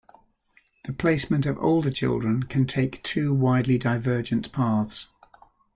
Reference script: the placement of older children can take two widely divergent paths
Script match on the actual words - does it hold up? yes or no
yes